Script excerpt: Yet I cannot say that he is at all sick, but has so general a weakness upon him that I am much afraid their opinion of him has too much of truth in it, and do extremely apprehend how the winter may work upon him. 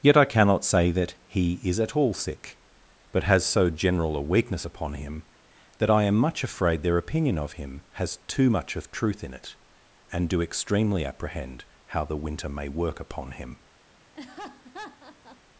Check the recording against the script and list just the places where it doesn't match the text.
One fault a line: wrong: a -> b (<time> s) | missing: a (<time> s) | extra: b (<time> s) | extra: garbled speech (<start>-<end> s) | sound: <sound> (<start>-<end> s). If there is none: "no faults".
sound: laugh (14.1-15.4 s)